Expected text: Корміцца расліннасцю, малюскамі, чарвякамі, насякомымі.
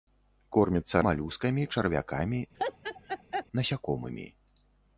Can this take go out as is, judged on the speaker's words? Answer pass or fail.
fail